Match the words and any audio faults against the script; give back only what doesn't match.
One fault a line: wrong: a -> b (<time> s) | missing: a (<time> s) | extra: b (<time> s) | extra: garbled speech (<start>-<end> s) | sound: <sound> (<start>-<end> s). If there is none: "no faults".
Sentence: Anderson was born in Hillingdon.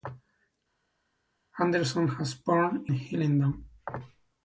missing: in (2.8 s)